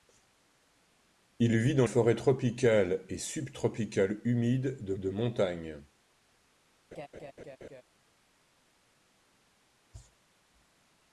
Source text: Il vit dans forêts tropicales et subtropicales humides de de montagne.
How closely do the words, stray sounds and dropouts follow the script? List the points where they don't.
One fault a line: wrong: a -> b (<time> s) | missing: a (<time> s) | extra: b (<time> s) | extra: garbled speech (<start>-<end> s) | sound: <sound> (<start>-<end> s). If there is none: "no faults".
sound: laugh (6.9-7.8 s)